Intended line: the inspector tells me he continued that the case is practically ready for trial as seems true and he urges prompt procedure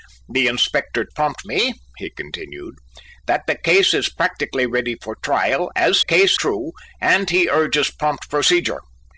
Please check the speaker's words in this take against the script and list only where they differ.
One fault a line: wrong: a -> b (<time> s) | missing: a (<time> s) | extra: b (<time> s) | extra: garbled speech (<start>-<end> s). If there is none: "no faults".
wrong: tells -> prompt (1.1 s)
wrong: seems -> case (6.0 s)